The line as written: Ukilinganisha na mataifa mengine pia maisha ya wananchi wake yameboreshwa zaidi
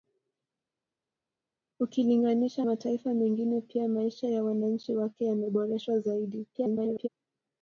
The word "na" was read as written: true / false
false